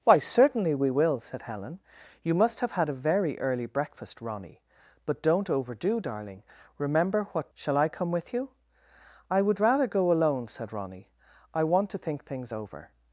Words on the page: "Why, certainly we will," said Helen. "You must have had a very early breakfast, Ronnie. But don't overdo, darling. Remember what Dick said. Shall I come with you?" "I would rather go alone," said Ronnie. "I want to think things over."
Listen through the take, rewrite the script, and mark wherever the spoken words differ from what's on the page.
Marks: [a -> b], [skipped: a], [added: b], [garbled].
"Why, certainly we will," said Helen. "You must have had a very early breakfast, Ronnie. But don't overdo, darling. Remember what [skipped: Dick said.] Shall I come with you?" "I would rather go alone," said Ronnie. "I want to think things over."